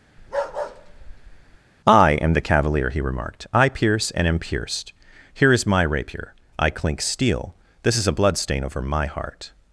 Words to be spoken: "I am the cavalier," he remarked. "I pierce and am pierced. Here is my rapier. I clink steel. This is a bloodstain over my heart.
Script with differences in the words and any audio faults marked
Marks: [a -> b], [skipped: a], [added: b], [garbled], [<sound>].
[bark] "I am the cavalier," he remarked. "I pierce and am pierced. Here is my rapier. I clink steel. This is a bloodstain over my heart.